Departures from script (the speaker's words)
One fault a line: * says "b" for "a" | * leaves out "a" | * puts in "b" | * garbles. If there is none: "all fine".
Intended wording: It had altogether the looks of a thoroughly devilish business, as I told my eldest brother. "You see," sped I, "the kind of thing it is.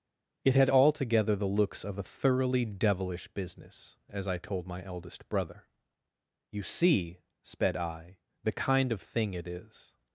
all fine